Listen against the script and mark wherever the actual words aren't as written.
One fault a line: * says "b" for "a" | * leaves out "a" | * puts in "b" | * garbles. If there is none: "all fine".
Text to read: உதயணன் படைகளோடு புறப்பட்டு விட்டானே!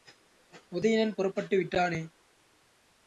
* leaves out "படைகளோடு"